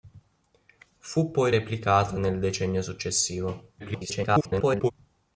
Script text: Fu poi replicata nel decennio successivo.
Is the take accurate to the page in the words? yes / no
no